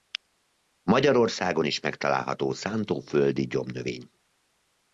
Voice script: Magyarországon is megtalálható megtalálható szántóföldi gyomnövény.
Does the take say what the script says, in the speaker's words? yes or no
no